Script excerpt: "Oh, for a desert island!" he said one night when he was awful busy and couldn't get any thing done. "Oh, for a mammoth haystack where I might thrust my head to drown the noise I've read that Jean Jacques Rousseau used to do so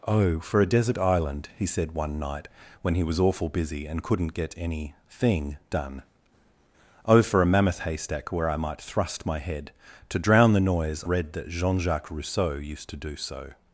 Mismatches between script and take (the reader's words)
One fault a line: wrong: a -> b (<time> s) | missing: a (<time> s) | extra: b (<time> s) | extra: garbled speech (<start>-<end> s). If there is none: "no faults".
missing: I've (11.0 s)